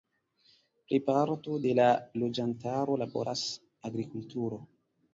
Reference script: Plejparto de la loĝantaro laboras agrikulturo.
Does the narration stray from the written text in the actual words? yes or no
no